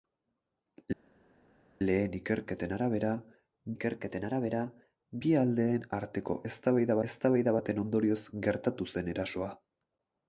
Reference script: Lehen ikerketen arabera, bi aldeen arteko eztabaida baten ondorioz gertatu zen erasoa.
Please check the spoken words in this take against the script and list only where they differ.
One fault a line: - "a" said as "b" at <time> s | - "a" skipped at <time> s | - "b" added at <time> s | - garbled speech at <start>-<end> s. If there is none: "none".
- "ikerketen arabera" added at 3.7 s
- "eztabaida" added at 7.1 s